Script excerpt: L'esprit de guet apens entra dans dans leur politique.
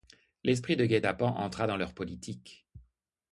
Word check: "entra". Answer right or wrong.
right